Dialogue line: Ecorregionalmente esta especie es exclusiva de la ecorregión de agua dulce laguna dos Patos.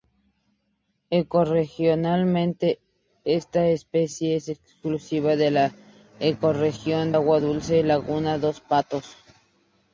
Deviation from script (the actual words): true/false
true